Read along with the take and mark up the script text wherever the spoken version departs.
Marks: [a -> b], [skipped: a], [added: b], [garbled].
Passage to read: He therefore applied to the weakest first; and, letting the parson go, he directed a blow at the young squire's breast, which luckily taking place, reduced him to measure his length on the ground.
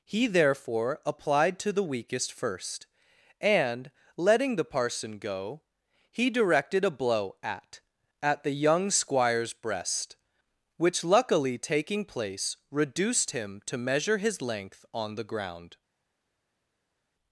He therefore applied to the weakest first; and, letting the parson go, he directed a blow at [added: at] the young squire's breast, which luckily taking place, reduced him to measure his length on the ground.